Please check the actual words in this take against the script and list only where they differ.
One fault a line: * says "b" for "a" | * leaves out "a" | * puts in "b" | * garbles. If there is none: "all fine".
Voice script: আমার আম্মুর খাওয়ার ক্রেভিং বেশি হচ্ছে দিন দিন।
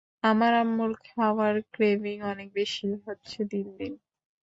* puts in "অনেক"